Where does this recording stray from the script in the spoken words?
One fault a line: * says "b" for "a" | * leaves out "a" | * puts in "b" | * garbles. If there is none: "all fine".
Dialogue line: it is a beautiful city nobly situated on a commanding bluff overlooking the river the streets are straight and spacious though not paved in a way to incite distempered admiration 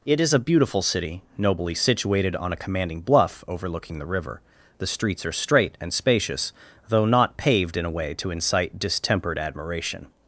all fine